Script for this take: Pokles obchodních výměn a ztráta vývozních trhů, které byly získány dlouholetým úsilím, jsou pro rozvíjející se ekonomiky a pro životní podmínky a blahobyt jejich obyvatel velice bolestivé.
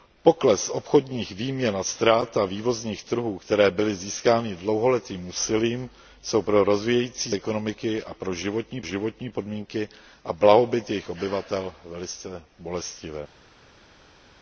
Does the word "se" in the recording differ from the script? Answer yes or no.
yes